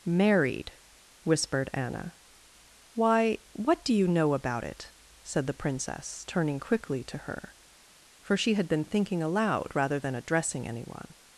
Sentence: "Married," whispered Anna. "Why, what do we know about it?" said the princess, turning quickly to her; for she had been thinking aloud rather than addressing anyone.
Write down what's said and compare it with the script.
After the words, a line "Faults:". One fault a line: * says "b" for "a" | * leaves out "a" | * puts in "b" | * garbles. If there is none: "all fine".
"Married," whispered Anna. "Why, what do you know about it?" said the princess, turning quickly to her; for she had been thinking aloud rather than addressing anyone.
Faults:
* says "you" for "we"